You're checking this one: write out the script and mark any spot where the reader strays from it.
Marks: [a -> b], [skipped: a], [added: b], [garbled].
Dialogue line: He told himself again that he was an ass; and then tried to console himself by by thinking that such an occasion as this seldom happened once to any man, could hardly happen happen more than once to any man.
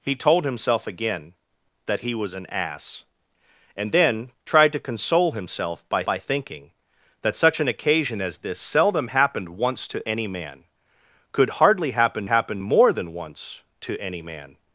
He told himself again that he was an ass; and then tried to console himself by by thinking that such an occasion as this seldom happened once to any man, could hardly happen happen more than once to any man.